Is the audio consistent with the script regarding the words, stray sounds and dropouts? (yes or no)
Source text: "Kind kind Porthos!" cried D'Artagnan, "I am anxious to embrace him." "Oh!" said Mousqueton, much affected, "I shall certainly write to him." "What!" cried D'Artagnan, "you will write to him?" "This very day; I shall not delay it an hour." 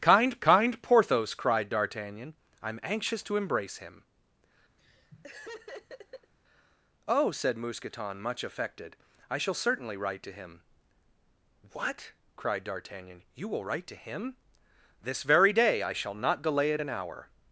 no